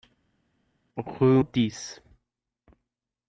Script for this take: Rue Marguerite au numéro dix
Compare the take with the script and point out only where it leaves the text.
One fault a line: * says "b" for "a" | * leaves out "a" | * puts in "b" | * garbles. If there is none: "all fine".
* leaves out "Marguerite au numéro"